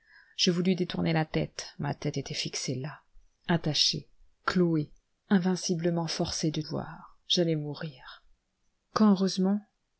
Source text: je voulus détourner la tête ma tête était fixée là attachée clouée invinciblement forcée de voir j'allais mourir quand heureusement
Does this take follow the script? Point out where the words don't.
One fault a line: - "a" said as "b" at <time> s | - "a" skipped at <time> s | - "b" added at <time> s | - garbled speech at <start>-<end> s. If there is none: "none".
none